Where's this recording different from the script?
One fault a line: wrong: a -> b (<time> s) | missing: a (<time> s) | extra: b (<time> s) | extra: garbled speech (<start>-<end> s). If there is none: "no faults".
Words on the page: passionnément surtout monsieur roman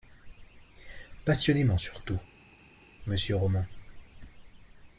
no faults